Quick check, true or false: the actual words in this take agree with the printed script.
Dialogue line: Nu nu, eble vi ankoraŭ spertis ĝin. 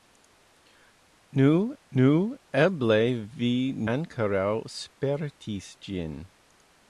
true